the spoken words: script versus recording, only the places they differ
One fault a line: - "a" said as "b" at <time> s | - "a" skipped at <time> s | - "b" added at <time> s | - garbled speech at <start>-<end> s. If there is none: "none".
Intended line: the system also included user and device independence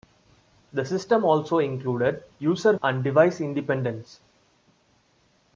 none